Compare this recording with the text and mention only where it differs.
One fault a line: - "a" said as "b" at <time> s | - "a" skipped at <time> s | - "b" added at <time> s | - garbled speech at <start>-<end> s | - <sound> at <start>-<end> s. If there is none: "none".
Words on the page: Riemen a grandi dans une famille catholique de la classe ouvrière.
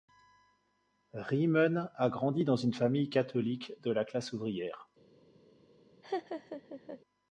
- laugh at 6.0-7.0 s